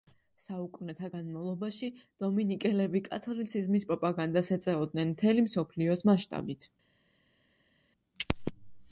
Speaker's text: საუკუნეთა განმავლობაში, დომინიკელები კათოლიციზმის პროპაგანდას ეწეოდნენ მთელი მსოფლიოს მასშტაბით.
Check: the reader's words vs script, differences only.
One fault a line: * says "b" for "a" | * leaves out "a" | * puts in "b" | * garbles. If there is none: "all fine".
all fine